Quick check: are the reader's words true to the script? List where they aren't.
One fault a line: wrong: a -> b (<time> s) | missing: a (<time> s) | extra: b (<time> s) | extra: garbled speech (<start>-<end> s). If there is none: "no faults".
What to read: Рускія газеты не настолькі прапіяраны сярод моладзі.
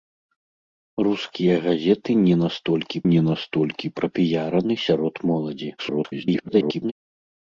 extra: не настолькі (3.1 s)
extra: garbled speech (5.8-6.9 s)